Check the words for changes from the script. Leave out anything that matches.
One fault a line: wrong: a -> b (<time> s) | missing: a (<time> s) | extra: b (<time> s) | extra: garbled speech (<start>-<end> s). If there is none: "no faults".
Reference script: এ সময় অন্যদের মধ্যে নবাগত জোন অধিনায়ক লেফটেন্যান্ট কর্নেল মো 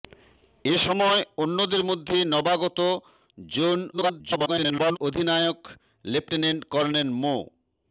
extra: garbled speech (3.9-5.0 s)